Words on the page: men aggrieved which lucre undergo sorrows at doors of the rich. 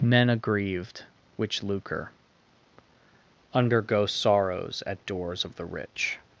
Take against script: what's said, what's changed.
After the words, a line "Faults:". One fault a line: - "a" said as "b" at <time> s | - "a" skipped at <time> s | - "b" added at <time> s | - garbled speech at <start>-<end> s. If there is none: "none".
men aggrieved which lucre undergo sorrows at doors of the rich.
Faults:
none